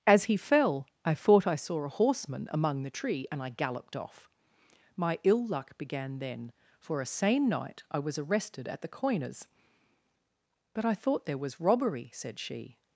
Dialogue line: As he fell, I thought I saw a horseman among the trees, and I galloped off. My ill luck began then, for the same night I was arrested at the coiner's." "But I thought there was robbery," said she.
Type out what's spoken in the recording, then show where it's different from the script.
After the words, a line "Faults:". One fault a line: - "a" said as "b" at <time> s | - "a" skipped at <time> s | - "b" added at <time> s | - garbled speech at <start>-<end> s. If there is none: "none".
As he fell, I thought I saw a horseman among the tree, and I galloped off. My ill luck began then, for a same night I was arrested at the coiner's." "But I thought there was robbery," said she.
Faults:
- "trees" said as "tree" at 2.9 s
- "the" said as "a" at 7.0 s